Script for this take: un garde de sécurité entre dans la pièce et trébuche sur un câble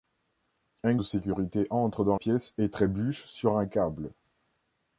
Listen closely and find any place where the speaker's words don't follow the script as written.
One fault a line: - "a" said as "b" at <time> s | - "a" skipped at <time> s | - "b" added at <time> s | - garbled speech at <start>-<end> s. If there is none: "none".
- "garde" skipped at 0.9 s
- "la" skipped at 2.2 s